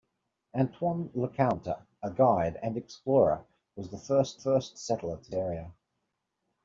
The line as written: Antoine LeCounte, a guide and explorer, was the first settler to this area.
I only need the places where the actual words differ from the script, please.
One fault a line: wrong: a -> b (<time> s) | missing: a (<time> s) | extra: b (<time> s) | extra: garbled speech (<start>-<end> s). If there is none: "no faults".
extra: first (4.3 s)
missing: this (5.3 s)